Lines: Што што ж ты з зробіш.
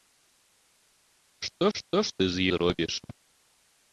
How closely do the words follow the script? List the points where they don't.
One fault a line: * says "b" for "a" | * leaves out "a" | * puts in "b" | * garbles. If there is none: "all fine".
all fine